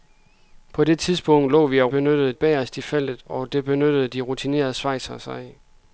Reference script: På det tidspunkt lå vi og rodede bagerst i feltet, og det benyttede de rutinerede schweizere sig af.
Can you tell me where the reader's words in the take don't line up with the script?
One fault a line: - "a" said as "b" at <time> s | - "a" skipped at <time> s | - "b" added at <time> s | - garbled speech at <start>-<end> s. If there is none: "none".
- "rodede" said as "benyttede" at 1.9 s